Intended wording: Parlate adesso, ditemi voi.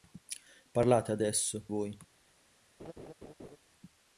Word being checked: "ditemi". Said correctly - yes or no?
no